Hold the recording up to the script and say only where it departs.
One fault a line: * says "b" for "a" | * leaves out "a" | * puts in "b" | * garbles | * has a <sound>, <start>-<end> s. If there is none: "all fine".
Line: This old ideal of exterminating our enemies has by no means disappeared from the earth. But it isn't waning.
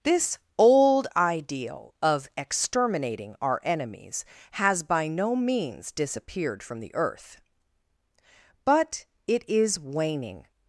* says "is" for "isn't"